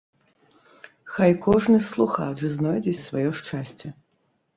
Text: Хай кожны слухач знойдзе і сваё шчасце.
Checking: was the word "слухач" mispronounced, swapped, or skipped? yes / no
no